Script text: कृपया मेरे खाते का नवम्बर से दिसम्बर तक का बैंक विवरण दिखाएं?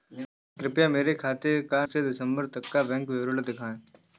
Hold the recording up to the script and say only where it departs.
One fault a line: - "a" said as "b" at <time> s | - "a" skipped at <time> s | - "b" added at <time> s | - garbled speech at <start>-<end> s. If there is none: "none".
- "नवम्बर" skipped at 1.9 s